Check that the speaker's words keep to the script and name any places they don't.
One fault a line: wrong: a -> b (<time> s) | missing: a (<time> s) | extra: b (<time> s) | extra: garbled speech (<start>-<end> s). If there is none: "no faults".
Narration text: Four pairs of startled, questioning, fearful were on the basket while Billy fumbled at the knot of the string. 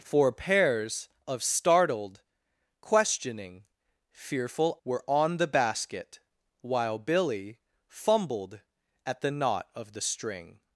no faults